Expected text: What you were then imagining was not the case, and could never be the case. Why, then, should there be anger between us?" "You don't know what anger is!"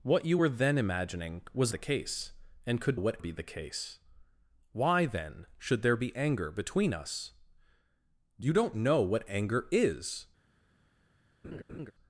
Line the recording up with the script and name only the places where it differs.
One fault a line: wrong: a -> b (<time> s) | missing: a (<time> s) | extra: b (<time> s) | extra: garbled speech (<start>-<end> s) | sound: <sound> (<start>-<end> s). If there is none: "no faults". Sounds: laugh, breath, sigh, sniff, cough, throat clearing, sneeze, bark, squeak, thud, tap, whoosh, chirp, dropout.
missing: not (1.7 s)
wrong: never -> what (2.9 s)
sound: laugh (11.4-11.9 s)